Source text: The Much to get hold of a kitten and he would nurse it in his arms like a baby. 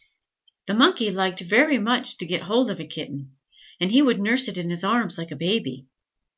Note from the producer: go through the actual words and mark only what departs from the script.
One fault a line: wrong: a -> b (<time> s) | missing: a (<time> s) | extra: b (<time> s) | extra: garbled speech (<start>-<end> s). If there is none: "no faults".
extra: Monkey liked very (0.7 s)